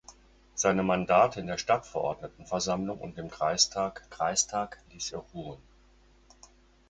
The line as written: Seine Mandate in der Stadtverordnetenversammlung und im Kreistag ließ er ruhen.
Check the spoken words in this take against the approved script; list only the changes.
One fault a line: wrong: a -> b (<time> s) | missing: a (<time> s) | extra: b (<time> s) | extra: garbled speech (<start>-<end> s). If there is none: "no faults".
extra: Kreistag (4.1 s)